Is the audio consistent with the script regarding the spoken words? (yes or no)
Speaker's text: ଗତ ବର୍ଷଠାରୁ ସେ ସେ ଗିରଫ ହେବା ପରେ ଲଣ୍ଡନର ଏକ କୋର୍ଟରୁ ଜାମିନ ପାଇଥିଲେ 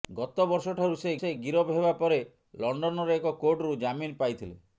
yes